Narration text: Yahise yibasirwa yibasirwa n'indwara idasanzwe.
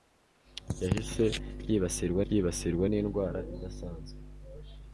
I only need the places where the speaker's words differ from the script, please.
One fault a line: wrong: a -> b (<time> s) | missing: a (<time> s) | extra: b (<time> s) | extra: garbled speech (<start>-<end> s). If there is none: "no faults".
no faults